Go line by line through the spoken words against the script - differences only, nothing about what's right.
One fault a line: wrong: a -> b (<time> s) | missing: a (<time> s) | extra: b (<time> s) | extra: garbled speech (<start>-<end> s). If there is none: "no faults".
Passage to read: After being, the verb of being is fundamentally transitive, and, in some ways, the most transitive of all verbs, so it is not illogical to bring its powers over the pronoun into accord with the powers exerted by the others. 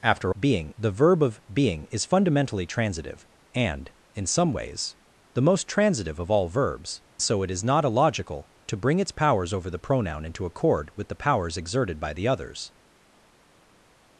no faults